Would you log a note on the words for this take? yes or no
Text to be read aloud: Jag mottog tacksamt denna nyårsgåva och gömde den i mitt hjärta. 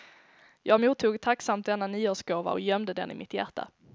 no